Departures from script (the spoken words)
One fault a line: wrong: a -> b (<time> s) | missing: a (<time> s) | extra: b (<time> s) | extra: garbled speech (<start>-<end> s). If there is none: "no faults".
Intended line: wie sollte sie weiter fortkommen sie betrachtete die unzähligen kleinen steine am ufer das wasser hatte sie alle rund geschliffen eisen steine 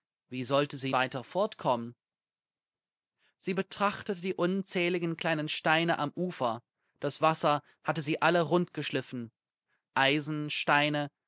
no faults